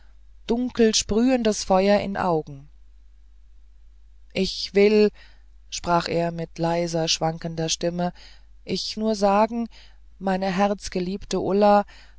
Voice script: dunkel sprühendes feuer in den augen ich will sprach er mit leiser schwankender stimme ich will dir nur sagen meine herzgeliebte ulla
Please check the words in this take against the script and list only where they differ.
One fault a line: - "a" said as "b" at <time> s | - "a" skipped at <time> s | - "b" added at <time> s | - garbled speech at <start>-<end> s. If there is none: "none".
- "den" skipped at 2.1 s
- "will dir" skipped at 9.0 s